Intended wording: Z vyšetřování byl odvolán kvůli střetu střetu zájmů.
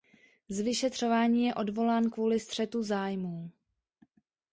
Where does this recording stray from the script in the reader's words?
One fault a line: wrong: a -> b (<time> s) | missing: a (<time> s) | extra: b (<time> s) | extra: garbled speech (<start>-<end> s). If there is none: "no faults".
wrong: byl -> je (1.4 s)
missing: střetu (2.8 s)